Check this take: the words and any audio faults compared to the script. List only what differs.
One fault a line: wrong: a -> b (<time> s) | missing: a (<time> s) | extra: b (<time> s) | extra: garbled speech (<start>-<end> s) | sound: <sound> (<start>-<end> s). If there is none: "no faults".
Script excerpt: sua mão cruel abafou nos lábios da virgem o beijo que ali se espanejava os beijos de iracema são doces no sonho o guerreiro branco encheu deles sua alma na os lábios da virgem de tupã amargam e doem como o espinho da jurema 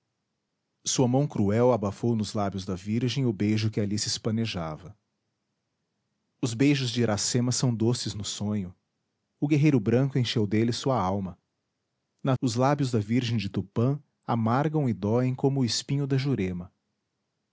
no faults